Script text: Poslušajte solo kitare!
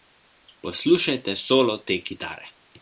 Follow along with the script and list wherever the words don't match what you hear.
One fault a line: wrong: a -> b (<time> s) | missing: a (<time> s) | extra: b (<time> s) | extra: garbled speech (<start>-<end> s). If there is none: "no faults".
extra: te (1.8 s)